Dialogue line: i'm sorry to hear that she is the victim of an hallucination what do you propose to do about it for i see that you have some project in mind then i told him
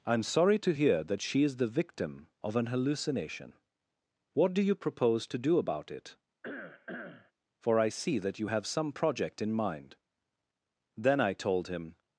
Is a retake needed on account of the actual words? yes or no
no